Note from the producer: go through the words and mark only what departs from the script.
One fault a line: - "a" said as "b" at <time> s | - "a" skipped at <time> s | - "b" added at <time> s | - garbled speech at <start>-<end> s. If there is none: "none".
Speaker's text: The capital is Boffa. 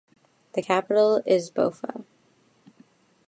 none